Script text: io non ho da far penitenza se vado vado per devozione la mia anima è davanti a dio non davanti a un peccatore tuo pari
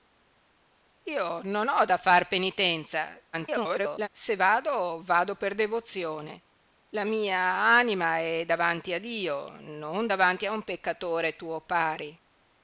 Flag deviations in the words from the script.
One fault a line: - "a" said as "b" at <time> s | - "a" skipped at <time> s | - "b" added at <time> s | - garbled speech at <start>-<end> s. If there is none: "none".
- garbled speech at 3.3-4.1 s